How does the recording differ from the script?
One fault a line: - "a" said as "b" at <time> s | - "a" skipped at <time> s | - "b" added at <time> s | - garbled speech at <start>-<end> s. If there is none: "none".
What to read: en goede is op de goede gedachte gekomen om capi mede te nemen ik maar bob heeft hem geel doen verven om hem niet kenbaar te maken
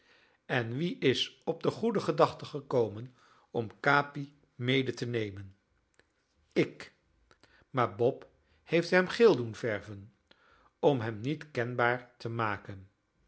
- "goede" said as "wie" at 0.8 s